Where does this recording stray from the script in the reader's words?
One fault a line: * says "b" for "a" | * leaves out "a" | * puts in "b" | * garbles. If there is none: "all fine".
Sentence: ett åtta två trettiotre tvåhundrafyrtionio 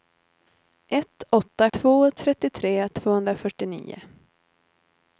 all fine